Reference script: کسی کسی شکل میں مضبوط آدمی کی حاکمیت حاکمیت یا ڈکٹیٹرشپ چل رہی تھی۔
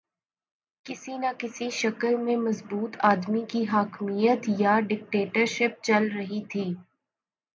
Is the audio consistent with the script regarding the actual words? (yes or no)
no